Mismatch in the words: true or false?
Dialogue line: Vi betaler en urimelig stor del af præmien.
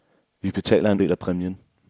true